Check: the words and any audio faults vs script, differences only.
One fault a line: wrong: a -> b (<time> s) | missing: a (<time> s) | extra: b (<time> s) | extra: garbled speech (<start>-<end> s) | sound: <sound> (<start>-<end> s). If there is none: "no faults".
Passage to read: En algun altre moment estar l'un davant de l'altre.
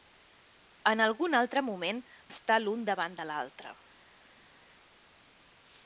no faults